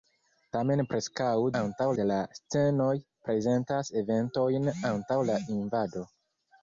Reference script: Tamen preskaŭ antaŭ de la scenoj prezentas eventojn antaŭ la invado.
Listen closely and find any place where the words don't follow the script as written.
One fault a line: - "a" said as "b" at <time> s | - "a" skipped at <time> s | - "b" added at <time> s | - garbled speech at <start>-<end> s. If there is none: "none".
none